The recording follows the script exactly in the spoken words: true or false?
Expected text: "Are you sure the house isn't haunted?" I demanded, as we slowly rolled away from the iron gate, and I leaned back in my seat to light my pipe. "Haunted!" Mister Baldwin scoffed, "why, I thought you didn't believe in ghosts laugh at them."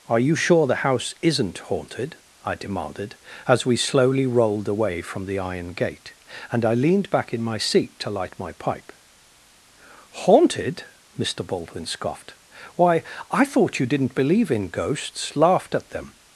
false